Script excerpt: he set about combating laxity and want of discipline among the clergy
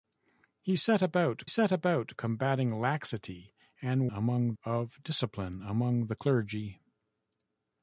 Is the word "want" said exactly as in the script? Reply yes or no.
no